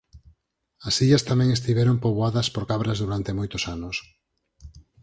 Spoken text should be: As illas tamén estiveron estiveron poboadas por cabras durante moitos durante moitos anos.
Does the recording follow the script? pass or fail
fail